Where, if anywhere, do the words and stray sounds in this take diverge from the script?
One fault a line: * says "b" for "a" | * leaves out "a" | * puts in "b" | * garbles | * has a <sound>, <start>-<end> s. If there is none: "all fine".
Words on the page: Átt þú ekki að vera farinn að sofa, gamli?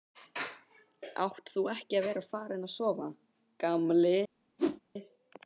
* has a whoosh, 4.6-4.8 s